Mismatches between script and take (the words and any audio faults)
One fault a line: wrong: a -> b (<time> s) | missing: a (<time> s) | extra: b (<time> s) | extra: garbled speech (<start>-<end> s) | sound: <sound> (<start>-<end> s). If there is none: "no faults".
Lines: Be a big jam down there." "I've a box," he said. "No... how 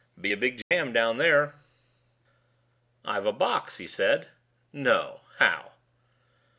sound: dropout (0.6-0.7 s)